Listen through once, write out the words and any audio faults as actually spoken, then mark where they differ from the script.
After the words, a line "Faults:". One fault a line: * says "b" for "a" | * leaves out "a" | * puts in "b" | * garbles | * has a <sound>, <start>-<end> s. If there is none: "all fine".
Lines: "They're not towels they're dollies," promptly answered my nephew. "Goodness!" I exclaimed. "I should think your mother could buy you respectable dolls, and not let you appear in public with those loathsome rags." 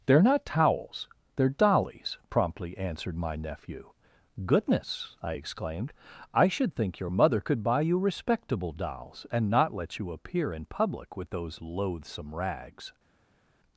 "They're not towels they're dollies," promptly answered my nephew. "Goodness!" I exclaimed. "I should think your mother could buy you respectable dolls, and not let you appear in public with those loathsome rags."
Faults:
all fine